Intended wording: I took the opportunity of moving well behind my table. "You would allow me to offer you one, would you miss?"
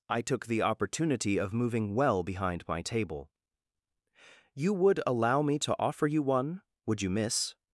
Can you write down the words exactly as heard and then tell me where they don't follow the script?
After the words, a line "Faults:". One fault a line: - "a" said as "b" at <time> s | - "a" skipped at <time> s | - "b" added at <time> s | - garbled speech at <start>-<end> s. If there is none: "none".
I took the opportunity of moving well behind my table. "You would allow me to offer you one, would you miss?"
Faults:
none